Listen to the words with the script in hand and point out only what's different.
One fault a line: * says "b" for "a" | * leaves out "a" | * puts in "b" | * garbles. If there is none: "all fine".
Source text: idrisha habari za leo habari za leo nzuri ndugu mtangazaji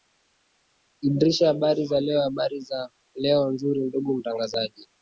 all fine